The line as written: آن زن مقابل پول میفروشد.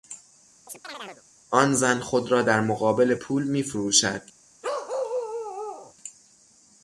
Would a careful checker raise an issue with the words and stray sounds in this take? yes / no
yes